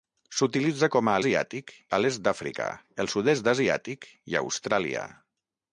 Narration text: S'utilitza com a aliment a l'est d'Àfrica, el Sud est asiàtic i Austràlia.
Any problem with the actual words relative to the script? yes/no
yes